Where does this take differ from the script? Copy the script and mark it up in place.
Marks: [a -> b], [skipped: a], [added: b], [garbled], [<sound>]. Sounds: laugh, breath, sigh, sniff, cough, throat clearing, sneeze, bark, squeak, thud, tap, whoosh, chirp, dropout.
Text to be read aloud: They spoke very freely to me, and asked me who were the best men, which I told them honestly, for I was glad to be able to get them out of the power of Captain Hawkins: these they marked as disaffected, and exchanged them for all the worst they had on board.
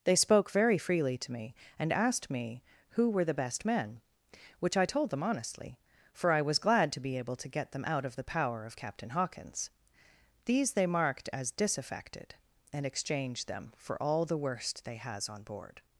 They spoke very freely to me, and asked me who were the best men, which I told them honestly, for I was glad to be able to get them out of the power of Captain Hawkins: these they marked as disaffected, and exchanged them for all the worst they [had -> has] on board.